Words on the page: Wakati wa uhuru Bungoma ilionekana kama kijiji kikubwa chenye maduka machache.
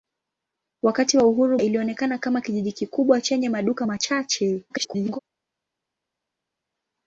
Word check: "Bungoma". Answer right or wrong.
wrong